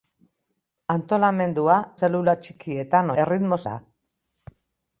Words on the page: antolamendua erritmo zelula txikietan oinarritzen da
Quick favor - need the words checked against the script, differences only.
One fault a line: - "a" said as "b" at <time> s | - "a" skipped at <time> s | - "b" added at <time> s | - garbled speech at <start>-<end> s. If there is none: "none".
- "erritmo" skipped at 1.8 s
- "oinarritzen" said as "erritmo" at 3.2 s